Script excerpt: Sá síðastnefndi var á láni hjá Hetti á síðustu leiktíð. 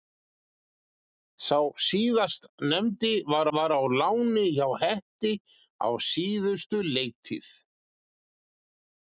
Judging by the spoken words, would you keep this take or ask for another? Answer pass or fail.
fail